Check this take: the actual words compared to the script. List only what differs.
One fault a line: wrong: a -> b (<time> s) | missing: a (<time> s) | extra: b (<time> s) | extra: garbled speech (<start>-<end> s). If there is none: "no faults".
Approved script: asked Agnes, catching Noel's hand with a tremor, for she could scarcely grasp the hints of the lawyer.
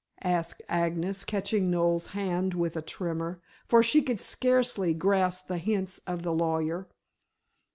no faults